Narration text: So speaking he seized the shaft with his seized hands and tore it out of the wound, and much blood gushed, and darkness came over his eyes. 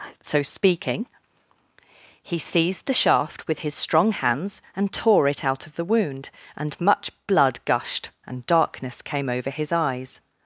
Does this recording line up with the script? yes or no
no